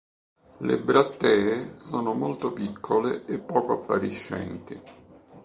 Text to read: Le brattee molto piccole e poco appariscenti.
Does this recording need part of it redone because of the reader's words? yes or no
yes